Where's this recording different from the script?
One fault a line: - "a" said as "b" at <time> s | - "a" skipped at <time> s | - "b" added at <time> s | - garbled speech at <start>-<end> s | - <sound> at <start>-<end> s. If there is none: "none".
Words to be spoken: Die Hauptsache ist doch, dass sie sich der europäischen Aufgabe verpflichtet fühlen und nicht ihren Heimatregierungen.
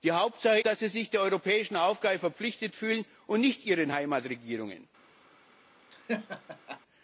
- "ist doch" skipped at 0.6 s
- laugh at 5.9-6.8 s